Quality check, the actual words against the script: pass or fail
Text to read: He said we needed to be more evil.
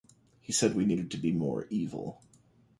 pass